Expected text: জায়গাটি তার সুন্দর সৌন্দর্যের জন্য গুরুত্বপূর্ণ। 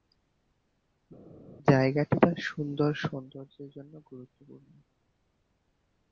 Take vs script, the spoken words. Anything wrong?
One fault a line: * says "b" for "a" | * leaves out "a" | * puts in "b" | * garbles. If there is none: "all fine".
all fine